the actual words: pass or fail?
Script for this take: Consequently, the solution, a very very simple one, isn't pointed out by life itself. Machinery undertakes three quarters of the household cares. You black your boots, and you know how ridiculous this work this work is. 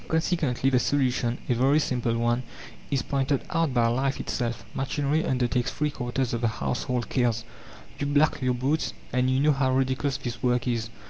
fail